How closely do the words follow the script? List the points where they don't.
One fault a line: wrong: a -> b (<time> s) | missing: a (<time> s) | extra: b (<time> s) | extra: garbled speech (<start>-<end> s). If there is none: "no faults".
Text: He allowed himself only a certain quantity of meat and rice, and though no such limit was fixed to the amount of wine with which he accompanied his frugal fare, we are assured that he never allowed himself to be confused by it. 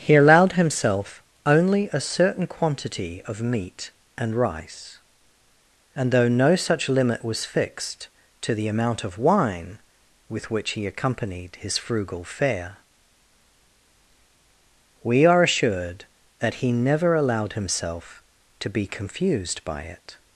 no faults